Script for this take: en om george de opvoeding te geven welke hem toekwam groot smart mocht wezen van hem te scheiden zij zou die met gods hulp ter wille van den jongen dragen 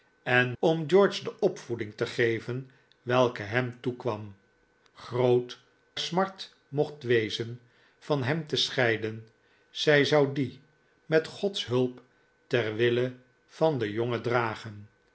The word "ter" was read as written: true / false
true